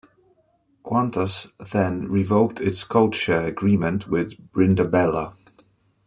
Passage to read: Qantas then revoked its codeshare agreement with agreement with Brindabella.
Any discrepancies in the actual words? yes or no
yes